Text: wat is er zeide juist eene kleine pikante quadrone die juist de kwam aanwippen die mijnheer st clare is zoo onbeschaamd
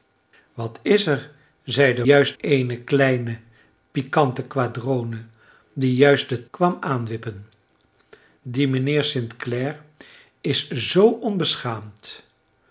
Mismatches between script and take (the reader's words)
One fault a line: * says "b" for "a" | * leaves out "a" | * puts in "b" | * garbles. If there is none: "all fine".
all fine